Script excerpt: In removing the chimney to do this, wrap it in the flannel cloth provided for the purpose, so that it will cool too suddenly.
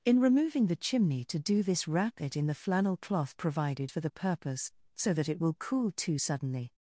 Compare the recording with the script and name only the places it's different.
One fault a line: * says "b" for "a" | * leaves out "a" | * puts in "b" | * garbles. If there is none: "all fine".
all fine